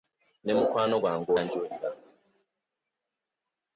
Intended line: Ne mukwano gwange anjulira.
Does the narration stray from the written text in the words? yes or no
no